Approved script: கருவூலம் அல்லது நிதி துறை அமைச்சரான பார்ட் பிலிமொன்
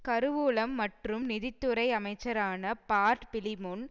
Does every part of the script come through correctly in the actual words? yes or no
no